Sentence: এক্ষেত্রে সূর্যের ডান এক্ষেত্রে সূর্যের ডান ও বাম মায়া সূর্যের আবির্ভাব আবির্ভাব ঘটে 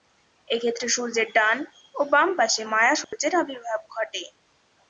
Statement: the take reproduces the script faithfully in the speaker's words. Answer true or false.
false